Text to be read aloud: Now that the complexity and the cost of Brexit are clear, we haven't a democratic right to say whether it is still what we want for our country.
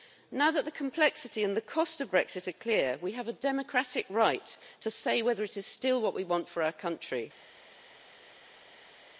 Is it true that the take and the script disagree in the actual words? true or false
true